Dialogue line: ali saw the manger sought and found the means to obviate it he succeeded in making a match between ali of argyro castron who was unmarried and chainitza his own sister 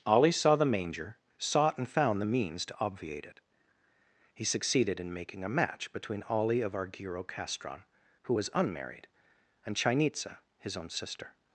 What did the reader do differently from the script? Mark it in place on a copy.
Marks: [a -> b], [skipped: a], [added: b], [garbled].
ali saw the manger sought and found the means to obviate it he succeeded in making a match between ali of argyro castron who was unmarried and chainitza his own sister